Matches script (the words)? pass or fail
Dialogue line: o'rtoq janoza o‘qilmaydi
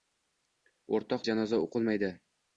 pass